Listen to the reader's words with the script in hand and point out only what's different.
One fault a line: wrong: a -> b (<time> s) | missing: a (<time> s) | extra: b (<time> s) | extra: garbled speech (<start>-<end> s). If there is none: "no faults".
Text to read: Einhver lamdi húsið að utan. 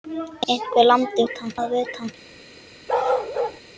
wrong: húsið -> utan (1.3 s)